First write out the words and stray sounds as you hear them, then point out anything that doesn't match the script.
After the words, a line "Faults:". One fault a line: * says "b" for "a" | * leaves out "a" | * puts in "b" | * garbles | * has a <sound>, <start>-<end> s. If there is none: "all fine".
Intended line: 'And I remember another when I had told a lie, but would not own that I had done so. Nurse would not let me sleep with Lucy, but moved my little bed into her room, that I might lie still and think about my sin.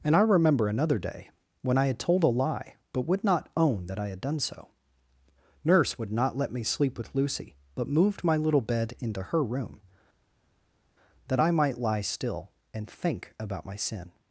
'And I remember another day, when I had told a lie, but would not own that I had done so. Nurse would not let me sleep with Lucy, but moved my little bed into her room, that I might lie still and think about my sin.
Faults:
* puts in "day"